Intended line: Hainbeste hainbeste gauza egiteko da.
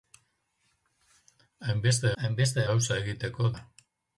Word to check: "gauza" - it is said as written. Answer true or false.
true